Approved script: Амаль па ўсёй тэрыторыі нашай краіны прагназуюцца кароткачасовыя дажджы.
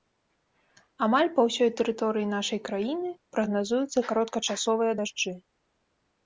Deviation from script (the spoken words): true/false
false